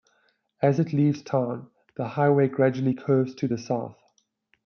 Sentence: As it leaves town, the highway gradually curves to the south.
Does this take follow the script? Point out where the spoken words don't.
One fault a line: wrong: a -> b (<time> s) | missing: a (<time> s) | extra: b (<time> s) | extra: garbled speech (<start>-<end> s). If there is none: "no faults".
no faults